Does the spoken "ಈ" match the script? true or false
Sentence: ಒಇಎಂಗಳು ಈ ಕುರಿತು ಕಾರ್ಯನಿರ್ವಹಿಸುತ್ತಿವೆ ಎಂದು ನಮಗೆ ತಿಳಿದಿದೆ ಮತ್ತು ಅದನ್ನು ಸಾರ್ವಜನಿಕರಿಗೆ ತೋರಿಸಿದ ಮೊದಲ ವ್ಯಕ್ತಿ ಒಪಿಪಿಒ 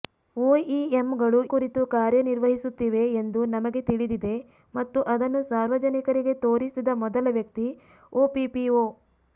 false